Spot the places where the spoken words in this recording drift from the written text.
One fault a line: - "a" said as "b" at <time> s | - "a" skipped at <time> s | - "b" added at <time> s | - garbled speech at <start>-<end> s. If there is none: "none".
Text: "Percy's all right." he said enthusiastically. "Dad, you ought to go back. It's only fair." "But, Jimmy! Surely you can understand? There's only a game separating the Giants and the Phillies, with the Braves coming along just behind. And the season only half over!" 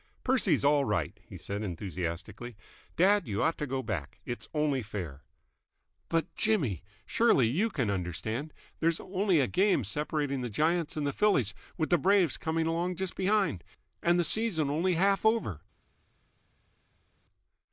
none